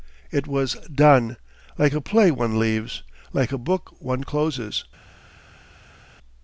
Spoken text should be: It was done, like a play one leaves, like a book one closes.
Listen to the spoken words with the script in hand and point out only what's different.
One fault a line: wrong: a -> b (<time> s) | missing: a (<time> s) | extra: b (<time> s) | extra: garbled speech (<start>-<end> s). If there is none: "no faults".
no faults